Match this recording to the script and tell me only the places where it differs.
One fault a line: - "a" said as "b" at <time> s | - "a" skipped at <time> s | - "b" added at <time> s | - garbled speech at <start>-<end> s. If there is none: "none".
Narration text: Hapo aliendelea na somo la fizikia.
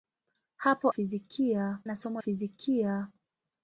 - "aliendelea" said as "fizikia" at 0.9 s
- "la" skipped at 2.2 s